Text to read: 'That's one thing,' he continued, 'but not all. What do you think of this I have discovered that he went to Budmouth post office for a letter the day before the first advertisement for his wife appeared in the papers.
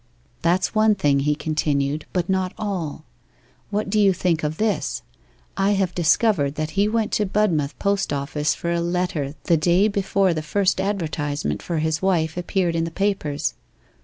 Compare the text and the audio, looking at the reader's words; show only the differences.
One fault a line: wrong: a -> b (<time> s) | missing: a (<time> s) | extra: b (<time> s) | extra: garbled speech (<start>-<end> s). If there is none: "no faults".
no faults